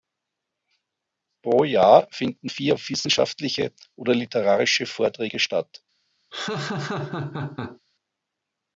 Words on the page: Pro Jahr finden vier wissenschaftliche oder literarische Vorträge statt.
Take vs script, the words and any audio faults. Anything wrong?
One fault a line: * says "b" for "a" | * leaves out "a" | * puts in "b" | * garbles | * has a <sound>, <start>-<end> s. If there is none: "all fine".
* has a laugh, 6.3-7.8 s